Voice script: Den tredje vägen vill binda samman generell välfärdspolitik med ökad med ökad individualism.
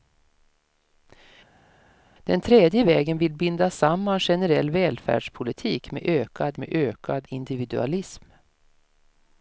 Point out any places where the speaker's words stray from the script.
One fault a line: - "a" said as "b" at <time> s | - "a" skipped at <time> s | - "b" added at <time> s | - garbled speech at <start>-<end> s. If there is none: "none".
none